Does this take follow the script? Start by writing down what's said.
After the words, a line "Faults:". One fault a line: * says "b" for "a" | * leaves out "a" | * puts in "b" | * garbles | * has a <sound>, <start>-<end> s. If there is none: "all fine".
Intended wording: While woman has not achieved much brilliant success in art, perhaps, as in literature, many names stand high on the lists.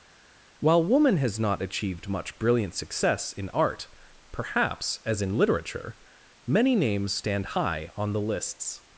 While woman has not achieved much brilliant success in art, perhaps, as in literature, many names stand high on the lists.
Faults:
all fine